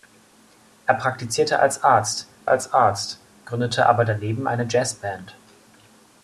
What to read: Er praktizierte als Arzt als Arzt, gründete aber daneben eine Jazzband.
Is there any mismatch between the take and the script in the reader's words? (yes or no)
no